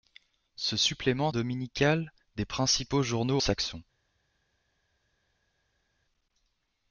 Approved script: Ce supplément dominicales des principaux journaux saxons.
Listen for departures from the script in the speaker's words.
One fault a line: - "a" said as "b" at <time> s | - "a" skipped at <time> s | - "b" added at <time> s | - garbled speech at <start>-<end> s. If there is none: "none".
none